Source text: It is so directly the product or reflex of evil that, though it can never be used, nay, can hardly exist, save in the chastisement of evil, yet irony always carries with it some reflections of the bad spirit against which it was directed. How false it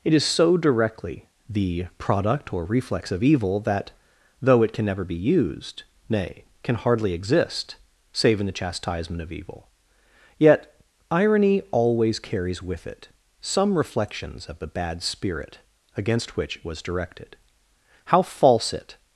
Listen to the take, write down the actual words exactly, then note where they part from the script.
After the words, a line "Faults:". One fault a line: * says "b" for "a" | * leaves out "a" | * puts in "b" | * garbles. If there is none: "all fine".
It is so directly the product or reflex of evil that, though it can never be used, nay, can hardly exist, save in the chastisement of evil, yet irony always carries with it some reflections of the bad spirit against which it was directed. How false it
Faults:
all fine